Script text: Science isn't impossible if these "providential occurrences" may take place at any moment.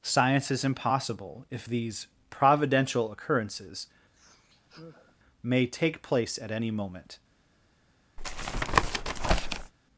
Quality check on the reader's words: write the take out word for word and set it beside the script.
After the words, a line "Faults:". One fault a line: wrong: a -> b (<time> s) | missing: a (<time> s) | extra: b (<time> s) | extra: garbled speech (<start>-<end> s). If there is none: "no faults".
Science is impossible if these "providential occurrences" may take place at any moment.
Faults:
wrong: isn't -> is (0.5 s)